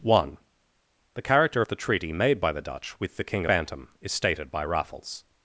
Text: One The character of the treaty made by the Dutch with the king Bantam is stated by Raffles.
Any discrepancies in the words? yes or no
no